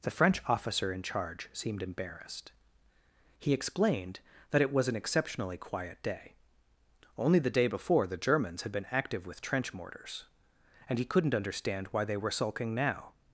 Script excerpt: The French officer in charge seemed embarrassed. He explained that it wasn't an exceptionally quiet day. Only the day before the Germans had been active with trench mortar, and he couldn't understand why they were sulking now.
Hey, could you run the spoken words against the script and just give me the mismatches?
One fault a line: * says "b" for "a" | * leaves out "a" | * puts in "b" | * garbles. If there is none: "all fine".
* says "was" for "wasn't"
* says "mortars" for "mortar"